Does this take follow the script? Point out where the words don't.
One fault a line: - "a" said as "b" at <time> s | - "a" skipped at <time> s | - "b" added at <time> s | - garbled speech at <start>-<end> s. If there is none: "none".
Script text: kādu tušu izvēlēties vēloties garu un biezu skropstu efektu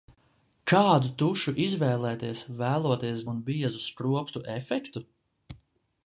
- "garu" skipped at 3.2 s